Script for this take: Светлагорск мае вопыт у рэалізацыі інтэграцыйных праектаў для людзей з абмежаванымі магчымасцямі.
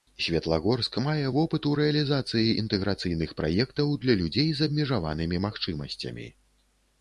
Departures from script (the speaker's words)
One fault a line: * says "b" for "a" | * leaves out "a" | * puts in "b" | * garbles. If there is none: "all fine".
all fine